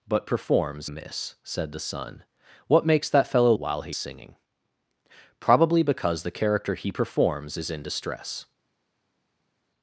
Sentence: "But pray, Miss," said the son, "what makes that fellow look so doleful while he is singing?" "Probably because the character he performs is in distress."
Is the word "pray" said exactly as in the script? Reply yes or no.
no